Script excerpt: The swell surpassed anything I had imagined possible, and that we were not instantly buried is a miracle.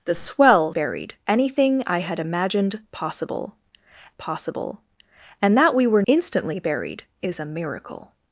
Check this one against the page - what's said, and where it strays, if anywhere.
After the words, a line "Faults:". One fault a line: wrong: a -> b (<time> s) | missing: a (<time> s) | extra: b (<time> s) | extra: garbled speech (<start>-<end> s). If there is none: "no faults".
The swell buried anything I had imagined possible possible, and that we were instantly buried is a miracle.
Faults:
wrong: surpassed -> buried (0.7 s)
extra: possible (4.2 s)
missing: not (6.0 s)